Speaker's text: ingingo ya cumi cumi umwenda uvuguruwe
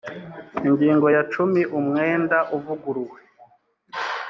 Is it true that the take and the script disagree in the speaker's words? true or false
true